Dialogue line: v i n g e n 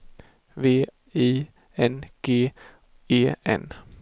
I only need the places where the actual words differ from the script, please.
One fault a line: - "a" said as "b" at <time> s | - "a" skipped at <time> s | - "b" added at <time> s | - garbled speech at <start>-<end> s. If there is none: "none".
none